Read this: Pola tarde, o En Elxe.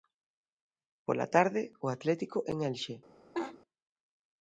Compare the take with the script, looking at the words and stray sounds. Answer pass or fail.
fail